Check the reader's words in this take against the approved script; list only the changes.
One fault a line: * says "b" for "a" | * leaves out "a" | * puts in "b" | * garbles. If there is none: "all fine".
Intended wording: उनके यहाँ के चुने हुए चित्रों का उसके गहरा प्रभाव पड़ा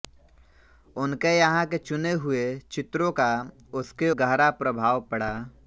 all fine